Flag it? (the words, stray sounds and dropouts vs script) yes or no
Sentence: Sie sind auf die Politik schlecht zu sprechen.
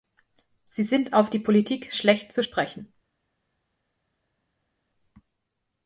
no